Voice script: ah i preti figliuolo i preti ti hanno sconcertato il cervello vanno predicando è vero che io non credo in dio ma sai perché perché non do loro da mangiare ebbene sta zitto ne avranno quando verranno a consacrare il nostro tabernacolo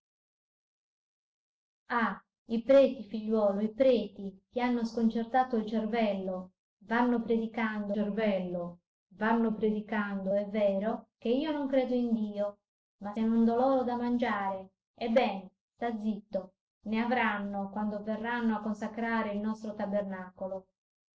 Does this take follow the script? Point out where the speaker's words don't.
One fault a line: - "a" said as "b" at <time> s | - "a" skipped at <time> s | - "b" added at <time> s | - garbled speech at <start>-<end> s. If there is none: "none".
- "cervello vanno predicando" added at 7.9 s
- "sai perché perché" skipped at 13.2 s